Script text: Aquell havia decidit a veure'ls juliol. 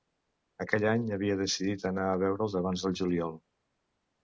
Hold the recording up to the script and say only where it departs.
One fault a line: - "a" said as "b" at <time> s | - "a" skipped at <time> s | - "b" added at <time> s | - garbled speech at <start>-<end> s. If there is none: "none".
- "any" added at 0.9 s
- "anar" added at 1.9 s
- "abans del" added at 2.6 s